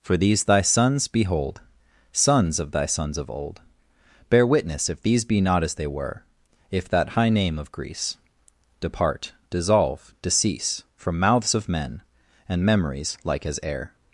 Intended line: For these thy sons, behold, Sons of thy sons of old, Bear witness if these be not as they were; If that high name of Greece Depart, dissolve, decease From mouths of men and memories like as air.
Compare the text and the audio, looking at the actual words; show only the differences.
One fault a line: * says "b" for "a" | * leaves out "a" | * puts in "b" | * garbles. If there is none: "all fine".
all fine